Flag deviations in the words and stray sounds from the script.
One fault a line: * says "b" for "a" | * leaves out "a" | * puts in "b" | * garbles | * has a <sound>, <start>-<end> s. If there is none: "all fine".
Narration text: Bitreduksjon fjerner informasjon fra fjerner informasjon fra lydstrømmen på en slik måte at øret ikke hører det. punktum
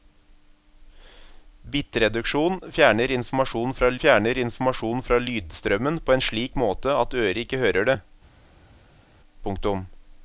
all fine